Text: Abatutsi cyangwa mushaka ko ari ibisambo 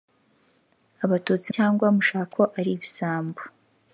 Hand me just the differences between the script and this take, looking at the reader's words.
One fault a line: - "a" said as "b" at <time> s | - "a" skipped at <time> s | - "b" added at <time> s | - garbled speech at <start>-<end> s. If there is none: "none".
none